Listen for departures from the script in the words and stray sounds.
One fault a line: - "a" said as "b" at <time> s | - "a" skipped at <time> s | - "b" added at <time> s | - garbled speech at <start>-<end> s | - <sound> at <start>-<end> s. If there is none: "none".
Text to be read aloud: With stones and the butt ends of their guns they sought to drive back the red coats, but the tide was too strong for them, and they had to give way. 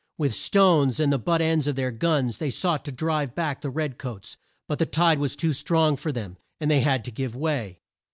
none